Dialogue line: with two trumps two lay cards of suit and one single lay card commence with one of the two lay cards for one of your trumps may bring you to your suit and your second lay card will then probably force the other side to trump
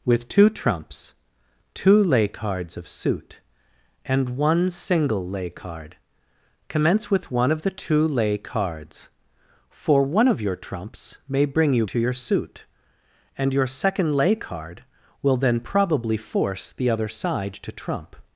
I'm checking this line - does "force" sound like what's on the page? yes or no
yes